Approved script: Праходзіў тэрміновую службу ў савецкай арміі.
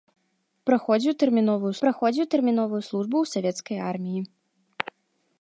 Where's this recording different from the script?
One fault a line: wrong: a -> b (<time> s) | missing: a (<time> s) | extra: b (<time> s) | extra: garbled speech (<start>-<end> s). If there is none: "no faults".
extra: праходзіў тэрміновую (1.8 s)